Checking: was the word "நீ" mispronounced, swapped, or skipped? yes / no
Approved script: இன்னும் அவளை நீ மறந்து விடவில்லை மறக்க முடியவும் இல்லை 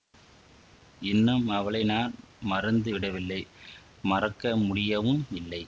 yes